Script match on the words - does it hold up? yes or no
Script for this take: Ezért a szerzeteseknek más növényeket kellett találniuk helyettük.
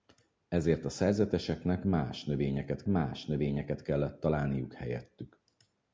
no